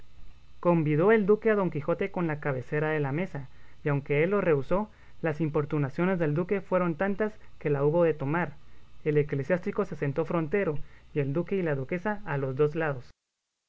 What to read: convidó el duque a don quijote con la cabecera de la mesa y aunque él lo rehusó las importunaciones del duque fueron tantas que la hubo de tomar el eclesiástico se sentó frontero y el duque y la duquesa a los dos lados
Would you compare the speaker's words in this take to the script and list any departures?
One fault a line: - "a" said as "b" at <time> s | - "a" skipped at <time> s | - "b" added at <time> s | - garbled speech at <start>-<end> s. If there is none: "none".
none